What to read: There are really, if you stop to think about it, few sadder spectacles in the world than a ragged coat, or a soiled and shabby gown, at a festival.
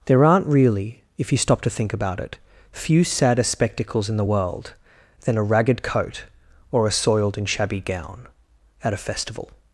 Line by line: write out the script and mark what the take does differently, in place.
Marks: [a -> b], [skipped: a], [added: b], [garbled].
There [are -> aren't] really, if you stop to think about it, few sadder spectacles in the world than a ragged coat, or a soiled and shabby gown, at a festival.